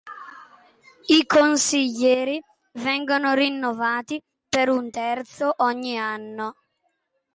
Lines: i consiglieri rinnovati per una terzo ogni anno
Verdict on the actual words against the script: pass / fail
fail